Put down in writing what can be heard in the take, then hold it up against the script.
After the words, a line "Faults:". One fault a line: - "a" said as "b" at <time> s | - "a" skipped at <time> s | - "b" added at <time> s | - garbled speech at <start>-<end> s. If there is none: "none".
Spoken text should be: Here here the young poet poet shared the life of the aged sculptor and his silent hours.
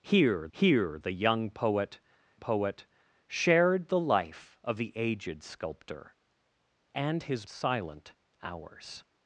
Here here the young poet poet shared the life of the aged sculptor and his silent hours.
Faults:
none